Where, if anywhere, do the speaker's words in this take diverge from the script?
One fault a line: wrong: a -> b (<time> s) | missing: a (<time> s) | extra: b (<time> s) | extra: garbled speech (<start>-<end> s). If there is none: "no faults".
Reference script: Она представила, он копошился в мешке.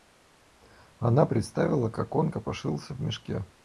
extra: как (1.9 s)